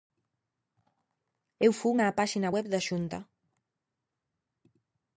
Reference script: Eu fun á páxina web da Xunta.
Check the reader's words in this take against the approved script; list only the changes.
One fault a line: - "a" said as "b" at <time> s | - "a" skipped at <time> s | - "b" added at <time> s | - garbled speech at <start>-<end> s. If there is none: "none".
none